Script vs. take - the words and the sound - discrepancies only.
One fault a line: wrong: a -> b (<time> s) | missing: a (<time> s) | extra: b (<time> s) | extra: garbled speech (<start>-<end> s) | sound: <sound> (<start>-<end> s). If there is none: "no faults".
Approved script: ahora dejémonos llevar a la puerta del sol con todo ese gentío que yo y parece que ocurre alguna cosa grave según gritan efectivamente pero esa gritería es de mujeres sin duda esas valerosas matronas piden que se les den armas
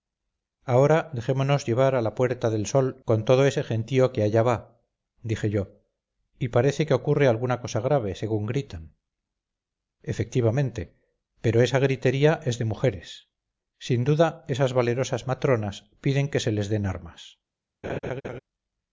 extra: allá va dije (4.2 s)
sound: laugh (17.8-18.4 s)